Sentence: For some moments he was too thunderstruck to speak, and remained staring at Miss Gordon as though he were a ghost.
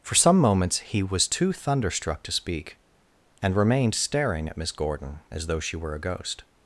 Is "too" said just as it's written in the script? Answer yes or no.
yes